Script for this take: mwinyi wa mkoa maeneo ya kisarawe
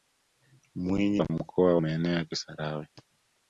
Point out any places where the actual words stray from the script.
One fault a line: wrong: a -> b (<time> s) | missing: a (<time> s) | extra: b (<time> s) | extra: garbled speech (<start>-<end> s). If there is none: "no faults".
no faults